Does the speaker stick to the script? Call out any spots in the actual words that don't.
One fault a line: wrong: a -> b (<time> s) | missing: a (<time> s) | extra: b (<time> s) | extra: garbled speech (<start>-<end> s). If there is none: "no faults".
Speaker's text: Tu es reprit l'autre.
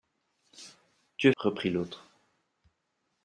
no faults